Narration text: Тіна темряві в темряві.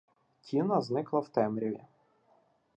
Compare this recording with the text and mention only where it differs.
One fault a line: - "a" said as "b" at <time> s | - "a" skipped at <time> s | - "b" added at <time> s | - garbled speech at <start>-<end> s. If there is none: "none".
- "темряві" said as "зникла" at 0.8 s